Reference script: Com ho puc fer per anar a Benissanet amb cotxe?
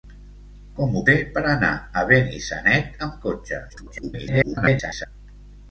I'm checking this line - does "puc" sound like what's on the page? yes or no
no